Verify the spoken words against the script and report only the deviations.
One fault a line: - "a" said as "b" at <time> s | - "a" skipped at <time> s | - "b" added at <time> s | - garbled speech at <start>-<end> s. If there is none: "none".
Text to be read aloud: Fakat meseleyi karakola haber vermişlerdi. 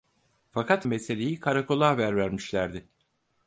none